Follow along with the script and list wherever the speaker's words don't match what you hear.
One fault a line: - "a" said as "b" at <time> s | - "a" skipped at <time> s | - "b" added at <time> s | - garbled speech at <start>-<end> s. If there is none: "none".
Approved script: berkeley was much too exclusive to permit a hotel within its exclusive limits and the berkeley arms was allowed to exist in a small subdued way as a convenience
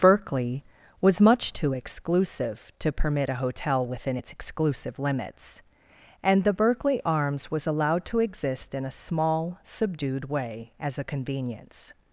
none